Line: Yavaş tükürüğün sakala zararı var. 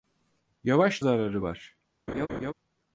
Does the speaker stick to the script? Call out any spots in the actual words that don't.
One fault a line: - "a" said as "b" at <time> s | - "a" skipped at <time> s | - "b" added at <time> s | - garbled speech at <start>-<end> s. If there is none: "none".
- "tükürüğün sakala" skipped at 1.0 s